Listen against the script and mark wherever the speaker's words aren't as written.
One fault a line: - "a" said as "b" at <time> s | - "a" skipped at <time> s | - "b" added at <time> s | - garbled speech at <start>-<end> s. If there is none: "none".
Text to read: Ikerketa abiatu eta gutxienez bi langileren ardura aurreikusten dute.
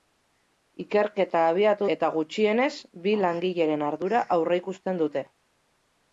none